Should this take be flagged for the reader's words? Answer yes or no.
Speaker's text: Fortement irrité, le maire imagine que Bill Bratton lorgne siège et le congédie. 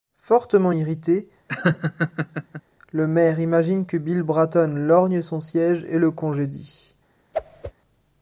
yes